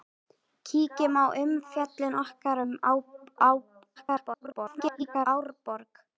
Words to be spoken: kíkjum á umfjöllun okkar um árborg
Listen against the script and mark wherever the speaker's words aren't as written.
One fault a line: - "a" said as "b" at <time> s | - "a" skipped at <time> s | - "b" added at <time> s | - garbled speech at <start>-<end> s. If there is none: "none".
- garbled speech at 4.0-5.3 s